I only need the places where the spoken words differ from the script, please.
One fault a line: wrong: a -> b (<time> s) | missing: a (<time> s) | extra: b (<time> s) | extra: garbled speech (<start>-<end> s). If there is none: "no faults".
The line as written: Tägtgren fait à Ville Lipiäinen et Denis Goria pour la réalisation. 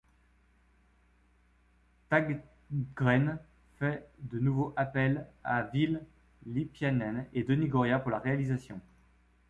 extra: de nouveau appel (4.2 s)